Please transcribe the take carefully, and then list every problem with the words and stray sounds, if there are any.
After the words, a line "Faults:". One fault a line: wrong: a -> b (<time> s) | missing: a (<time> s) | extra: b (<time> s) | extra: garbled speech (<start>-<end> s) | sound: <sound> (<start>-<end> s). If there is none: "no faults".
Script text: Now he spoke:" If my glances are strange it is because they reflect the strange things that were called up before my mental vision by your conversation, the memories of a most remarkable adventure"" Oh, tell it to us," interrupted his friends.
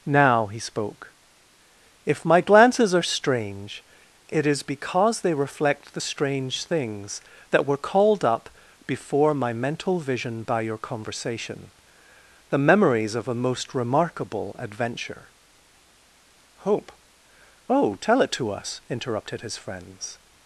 Now he spoke:" If my glances are strange it is because they reflect the strange things that were called up before my mental vision by your conversation, the memories of a most remarkable adventure"" hope Oh, tell it to us," interrupted his friends.
Faults:
extra: hope (16.6 s)